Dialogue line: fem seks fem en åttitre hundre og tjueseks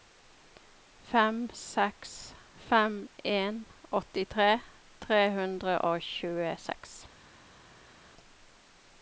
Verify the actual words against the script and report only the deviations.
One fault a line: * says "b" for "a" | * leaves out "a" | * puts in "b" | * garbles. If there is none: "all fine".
* puts in "tre"